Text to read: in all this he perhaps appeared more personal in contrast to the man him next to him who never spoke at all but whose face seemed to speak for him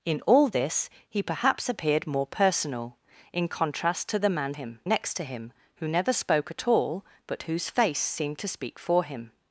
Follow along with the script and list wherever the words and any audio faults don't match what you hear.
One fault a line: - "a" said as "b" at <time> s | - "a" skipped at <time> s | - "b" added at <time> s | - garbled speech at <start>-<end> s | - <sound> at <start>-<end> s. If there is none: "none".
none